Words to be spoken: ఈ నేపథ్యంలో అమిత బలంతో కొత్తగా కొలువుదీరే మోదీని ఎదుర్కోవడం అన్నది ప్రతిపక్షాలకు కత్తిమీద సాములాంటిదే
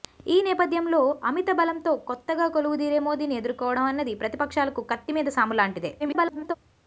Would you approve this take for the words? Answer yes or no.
no